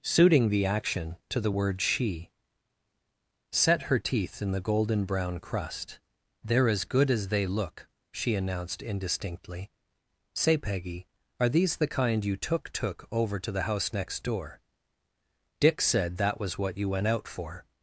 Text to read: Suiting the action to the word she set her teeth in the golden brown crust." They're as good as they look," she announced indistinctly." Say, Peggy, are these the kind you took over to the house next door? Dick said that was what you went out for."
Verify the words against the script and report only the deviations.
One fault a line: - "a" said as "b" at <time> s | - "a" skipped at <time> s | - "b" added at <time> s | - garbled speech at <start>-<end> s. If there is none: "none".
- "took" added at 12.7 s